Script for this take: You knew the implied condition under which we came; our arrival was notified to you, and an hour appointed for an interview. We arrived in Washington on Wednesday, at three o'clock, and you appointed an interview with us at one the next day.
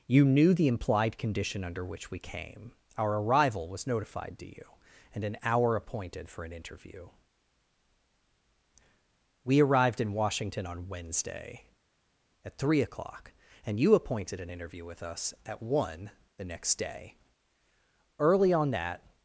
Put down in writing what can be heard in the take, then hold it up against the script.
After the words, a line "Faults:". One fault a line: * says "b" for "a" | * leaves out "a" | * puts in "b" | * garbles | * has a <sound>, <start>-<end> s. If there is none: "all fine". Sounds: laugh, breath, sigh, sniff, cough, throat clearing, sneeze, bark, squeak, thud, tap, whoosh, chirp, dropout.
You knew the implied condition under which we came; our arrival was notified to you, and an hour appointed for an interview. We arrived in Washington on Wednesday, at three o'clock, and you appointed an interview with us at one the next day. Early on that
Faults:
* puts in "Early on that"